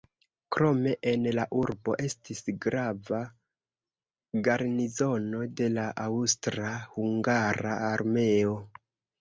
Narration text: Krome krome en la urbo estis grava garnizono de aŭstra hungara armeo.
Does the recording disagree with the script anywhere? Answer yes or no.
yes